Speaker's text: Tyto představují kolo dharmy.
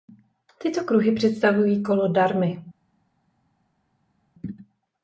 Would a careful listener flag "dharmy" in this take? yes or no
no